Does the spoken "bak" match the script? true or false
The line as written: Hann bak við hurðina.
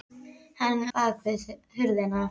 true